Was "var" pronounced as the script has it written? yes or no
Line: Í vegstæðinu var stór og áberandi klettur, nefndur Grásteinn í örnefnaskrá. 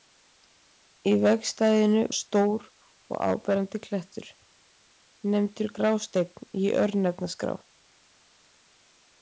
no